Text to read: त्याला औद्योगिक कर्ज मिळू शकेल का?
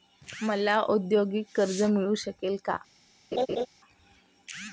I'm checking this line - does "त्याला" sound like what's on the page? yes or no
no